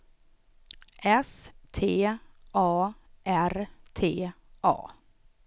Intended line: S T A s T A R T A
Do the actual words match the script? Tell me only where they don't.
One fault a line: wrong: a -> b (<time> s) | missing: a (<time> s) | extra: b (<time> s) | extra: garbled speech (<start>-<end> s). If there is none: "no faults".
missing: s T A (2.2 s)